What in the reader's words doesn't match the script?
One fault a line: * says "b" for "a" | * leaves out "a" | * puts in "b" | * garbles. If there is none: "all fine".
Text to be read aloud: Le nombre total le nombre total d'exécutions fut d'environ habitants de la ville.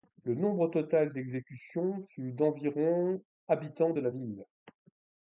* leaves out "le nombre total"